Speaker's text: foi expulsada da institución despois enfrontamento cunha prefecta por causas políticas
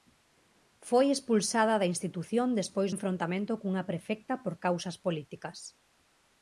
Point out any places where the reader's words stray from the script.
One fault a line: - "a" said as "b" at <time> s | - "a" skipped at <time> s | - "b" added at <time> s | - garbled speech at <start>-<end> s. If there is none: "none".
none